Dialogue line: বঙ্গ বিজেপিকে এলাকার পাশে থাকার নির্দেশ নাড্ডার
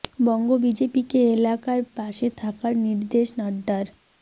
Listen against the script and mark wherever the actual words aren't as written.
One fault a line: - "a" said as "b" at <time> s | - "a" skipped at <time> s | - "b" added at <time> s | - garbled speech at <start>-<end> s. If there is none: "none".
none